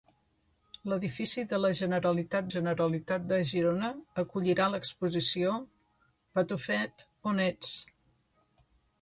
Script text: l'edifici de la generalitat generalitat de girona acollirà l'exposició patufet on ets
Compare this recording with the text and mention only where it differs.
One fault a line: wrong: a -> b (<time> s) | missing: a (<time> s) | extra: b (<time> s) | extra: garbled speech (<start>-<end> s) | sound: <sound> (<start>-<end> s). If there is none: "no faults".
no faults